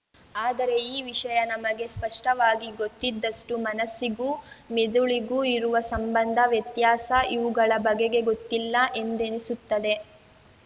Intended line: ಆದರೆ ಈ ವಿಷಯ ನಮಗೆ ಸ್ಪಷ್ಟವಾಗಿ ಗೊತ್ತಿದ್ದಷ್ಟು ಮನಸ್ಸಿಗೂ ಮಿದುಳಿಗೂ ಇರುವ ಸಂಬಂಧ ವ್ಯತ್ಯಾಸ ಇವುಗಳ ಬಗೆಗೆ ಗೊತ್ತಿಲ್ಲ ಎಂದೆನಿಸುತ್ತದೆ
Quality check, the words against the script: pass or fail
pass